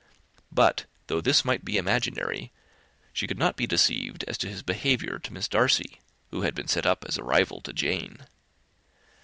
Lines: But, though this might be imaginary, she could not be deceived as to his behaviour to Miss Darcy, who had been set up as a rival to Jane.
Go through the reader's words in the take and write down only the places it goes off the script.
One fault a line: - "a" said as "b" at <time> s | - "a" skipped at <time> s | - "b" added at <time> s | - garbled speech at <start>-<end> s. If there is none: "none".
none